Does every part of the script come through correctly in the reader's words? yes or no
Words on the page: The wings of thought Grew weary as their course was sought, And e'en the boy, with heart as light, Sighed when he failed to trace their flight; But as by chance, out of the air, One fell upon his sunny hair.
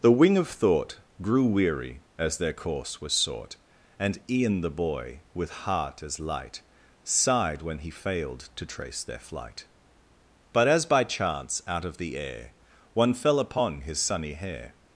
no